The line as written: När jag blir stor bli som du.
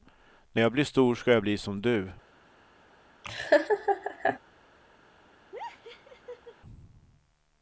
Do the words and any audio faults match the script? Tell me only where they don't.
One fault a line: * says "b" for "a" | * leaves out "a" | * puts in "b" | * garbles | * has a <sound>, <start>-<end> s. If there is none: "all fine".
* puts in "ska jag"
* has a laugh, 3.2-4.4 s
* has a laugh, 5.5-6.5 s